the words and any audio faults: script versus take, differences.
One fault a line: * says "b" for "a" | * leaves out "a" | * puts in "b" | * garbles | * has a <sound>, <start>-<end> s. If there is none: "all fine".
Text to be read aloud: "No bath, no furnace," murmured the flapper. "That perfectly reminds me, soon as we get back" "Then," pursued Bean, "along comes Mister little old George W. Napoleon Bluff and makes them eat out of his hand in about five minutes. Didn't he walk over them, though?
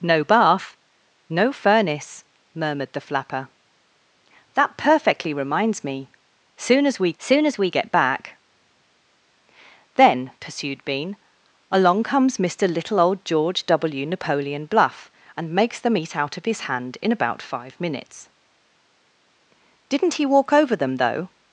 * puts in "soon as we"